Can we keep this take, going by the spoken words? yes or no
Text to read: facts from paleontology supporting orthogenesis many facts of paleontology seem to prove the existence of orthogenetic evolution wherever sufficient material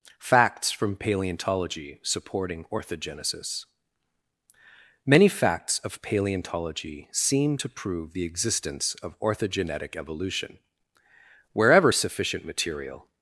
yes